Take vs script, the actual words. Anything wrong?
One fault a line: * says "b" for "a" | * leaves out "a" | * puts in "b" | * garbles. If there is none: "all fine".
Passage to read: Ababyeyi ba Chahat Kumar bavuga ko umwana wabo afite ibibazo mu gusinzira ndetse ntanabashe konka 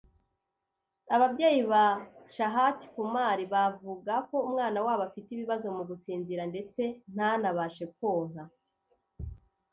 all fine